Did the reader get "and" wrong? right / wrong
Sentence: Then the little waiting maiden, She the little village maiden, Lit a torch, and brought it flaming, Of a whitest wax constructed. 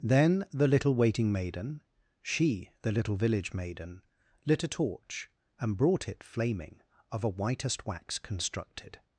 right